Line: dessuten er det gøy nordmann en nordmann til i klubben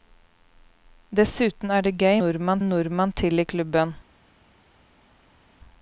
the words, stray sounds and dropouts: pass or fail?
pass